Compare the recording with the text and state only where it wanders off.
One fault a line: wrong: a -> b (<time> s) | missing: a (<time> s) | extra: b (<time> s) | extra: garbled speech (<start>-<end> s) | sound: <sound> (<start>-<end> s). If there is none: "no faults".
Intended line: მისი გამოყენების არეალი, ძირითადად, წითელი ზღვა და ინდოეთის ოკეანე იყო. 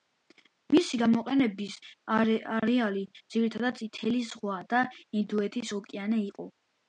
no faults